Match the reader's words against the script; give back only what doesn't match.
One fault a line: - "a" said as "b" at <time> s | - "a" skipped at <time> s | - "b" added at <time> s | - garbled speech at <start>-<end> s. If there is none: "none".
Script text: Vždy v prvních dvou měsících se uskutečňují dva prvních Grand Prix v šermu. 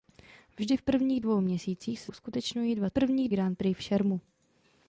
none